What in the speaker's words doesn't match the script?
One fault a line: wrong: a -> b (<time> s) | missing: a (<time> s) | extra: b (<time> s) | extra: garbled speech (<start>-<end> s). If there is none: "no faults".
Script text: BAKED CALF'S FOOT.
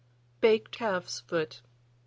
no faults